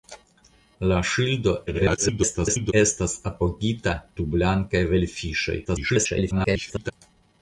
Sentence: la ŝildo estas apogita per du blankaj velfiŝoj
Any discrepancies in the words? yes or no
yes